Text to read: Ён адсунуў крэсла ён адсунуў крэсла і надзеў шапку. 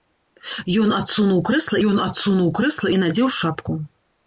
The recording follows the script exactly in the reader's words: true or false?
true